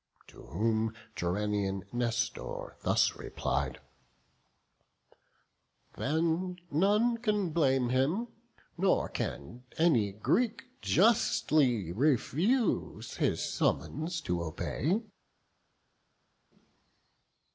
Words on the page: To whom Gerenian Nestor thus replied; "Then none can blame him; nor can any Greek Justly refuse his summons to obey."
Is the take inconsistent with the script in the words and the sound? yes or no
no